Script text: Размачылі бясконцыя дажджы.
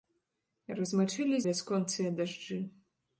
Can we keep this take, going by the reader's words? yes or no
yes